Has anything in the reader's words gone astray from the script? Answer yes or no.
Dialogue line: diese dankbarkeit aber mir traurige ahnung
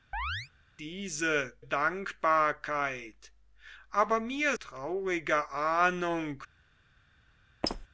no